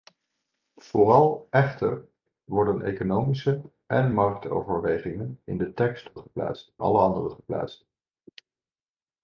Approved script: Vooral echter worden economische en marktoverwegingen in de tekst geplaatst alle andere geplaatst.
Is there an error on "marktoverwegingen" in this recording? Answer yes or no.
no